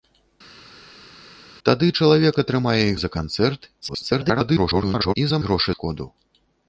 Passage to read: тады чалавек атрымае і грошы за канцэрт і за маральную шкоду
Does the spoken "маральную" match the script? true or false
false